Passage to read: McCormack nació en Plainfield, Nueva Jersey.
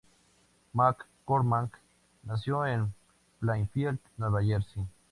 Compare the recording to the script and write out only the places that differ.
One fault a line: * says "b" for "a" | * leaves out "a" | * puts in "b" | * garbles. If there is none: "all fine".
all fine